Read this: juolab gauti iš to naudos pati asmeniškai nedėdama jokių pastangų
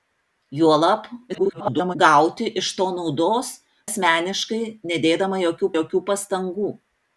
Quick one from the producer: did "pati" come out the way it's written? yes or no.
no